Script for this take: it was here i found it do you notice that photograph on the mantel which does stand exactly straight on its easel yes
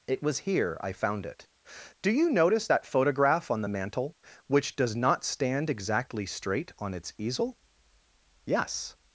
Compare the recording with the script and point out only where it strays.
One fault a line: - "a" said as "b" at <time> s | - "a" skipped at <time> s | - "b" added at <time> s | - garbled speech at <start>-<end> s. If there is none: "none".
- "not" added at 5.0 s